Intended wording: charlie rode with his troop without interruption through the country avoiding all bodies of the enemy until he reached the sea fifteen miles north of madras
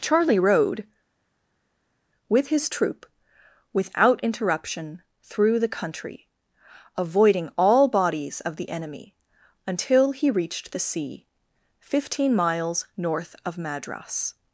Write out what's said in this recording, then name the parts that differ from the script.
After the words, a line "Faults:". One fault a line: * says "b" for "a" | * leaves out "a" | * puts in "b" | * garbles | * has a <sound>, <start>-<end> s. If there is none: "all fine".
charlie rode with his troop without interruption through the country avoiding all bodies of the enemy until he reached the sea fifteen miles north of madras
Faults:
all fine